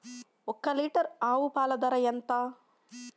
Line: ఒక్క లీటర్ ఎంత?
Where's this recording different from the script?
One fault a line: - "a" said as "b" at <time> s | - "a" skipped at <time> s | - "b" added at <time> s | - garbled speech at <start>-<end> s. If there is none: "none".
- "ఆవు పాల ధర" added at 1.2 s